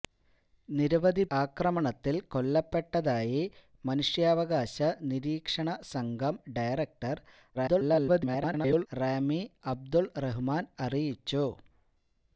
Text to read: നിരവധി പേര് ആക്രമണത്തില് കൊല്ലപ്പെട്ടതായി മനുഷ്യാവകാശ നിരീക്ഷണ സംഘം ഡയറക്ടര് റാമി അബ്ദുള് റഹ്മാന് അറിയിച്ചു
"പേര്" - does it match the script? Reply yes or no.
no